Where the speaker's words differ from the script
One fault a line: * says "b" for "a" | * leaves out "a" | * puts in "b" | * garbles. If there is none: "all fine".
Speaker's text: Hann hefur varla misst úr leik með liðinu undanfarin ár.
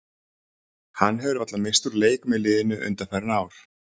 all fine